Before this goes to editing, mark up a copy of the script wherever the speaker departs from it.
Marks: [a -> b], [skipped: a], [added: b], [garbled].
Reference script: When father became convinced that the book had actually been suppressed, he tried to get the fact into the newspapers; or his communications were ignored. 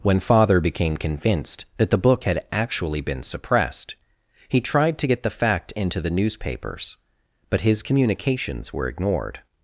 When father became convinced that the book had actually been suppressed, he tried to get the fact into the newspapers; [or -> but] his communications were ignored.